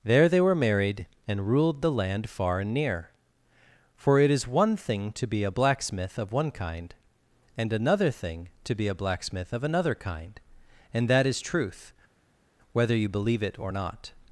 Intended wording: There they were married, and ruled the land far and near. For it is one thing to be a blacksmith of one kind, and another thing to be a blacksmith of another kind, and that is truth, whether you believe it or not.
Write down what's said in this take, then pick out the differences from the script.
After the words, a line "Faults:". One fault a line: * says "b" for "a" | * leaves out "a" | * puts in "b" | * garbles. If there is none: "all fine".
There they were married, and ruled the land far and near. For it is one thing to be a blacksmith of one kind, and another thing to be a blacksmith of another kind, and that is truth, whether you believe it or not.
Faults:
all fine